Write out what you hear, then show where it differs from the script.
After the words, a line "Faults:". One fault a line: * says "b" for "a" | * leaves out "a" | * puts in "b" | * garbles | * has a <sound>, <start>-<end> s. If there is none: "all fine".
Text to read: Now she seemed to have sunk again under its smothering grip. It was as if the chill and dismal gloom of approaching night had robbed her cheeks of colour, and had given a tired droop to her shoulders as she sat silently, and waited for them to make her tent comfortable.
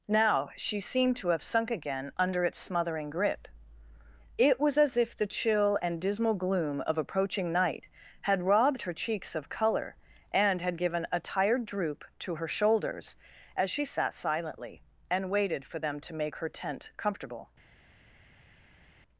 Now she seemed to have sunk again under its smothering grip. It was as if the chill and dismal gloom of approaching night had robbed her cheeks of colour, and had given a tired droop to her shoulders as she sat silently, and waited for them to make her tent comfortable.
Faults:
all fine